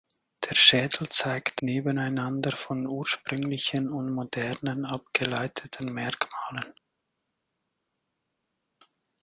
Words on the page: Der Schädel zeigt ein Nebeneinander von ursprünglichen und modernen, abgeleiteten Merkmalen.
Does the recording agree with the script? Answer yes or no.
no